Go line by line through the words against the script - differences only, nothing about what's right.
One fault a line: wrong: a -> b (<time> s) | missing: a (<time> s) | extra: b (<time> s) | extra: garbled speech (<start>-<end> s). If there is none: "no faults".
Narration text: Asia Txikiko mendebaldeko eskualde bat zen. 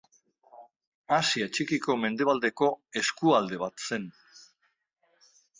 no faults